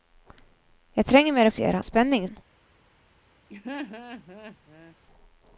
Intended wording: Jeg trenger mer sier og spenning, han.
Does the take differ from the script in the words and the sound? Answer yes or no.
yes